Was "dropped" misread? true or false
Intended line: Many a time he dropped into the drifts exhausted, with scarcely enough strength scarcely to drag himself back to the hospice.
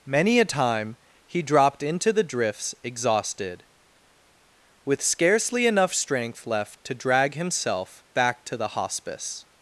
false